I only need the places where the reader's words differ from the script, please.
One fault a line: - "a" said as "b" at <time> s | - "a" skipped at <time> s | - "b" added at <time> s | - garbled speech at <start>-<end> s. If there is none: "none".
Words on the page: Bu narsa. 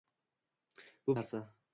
none